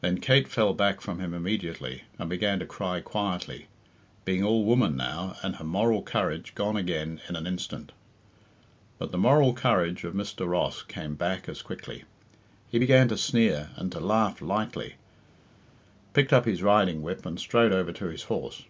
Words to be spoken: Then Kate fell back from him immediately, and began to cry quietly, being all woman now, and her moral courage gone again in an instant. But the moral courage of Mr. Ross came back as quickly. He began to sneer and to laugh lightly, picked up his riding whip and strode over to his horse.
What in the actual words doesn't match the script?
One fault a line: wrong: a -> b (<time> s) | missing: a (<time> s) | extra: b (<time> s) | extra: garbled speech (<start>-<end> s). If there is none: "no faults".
no faults